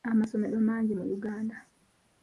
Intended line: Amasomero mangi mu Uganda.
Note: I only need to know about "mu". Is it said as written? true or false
true